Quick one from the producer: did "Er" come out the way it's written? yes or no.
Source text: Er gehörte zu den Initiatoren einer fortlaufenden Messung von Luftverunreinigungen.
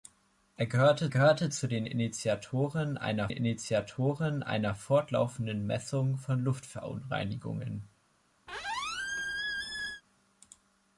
yes